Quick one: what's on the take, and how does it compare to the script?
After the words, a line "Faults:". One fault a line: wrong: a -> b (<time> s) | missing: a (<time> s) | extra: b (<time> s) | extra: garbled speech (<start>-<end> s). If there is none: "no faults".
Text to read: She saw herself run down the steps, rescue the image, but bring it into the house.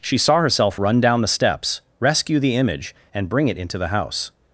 She saw herself run down the steps, rescue the image, and bring it into the house.
Faults:
wrong: but -> and (3.1 s)